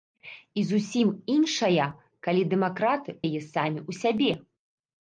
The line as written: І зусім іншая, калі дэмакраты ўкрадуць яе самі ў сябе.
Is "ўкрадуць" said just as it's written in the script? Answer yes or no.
no